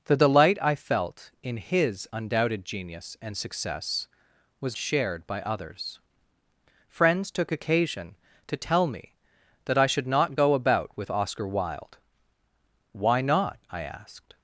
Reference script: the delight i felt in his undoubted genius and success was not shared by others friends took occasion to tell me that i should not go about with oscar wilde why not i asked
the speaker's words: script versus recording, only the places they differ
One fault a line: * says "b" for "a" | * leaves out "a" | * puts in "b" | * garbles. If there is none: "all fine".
* leaves out "not"